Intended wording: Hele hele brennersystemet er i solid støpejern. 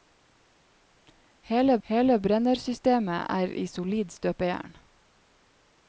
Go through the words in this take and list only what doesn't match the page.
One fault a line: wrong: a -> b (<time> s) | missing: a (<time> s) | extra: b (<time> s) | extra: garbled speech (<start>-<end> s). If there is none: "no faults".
no faults